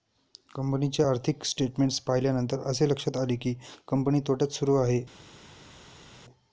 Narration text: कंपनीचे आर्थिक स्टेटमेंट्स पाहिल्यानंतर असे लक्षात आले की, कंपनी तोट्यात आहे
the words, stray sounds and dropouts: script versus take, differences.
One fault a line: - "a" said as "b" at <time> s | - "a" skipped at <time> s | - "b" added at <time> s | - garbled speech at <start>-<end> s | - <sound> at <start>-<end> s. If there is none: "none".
- "सुरू" added at 4.5 s